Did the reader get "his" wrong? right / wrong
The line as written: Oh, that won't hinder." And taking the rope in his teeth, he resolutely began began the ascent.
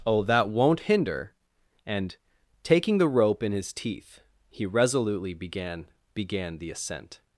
right